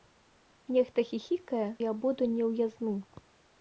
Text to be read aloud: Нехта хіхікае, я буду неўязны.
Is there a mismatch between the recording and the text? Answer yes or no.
no